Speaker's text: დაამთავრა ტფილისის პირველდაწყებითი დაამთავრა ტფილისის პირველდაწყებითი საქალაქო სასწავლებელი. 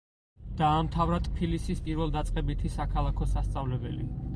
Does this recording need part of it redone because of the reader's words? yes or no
yes